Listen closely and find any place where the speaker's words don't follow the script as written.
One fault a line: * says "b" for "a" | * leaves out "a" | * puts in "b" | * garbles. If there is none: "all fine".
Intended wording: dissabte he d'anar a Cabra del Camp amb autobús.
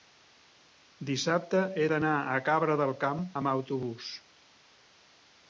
all fine